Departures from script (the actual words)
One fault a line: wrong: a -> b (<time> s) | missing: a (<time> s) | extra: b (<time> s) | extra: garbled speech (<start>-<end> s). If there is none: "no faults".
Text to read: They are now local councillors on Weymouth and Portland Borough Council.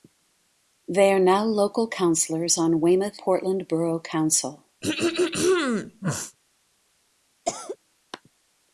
missing: and (3.2 s)